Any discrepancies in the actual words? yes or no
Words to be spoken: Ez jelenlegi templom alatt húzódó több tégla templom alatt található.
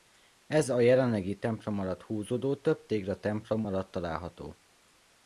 yes